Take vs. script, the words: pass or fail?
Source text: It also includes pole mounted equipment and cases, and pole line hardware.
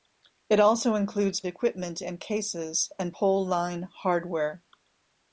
fail